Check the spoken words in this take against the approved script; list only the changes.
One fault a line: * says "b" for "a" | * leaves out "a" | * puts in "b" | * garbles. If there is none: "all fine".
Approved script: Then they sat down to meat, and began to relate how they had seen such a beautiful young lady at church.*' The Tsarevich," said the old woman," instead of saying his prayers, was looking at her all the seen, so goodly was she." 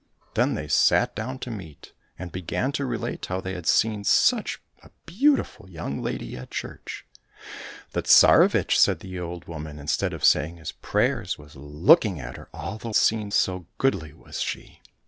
all fine